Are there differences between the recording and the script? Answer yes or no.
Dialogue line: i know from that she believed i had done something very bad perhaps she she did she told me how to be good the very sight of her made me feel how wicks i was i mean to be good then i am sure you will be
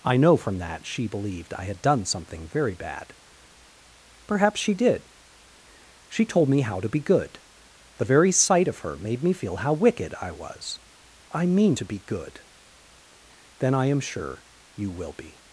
yes